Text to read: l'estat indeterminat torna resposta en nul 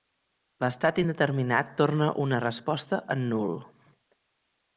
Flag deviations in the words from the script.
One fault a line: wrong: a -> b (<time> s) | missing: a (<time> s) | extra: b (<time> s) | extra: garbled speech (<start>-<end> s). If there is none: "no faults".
extra: una (2.3 s)